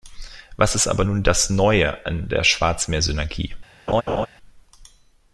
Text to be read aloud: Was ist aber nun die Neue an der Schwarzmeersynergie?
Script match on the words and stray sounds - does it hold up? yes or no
no